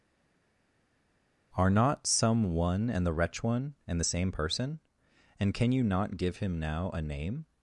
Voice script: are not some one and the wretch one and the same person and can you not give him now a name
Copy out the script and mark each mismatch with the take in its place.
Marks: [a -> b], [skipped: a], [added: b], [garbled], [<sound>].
are not some one and the wretch one and the same person and can you not give him now a name